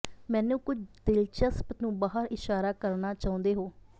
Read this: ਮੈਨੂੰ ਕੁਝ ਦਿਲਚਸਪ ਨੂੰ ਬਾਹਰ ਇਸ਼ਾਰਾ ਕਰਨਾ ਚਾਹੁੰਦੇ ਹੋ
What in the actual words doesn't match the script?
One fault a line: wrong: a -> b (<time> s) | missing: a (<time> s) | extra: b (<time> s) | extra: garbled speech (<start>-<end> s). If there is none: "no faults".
no faults